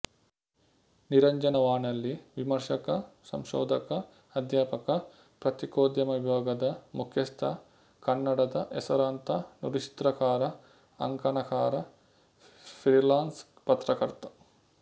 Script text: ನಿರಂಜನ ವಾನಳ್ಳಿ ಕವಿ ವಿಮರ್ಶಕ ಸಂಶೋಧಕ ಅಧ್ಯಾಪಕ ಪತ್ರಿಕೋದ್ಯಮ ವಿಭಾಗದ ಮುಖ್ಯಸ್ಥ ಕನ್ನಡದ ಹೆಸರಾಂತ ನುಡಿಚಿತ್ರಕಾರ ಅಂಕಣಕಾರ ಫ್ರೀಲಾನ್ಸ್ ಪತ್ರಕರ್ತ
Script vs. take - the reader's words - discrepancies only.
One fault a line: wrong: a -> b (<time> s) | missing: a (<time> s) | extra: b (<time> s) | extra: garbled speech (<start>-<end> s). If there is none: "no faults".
missing: ಕವಿ (2.1 s)